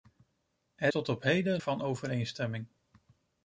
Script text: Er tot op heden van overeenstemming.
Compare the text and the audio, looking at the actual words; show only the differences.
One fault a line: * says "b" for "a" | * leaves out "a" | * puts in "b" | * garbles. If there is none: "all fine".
all fine